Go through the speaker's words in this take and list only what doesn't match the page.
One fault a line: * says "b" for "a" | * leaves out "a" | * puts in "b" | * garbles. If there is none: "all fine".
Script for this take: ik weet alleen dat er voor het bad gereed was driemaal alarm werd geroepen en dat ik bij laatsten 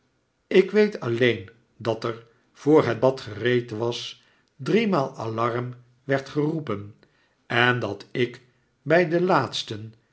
* puts in "den"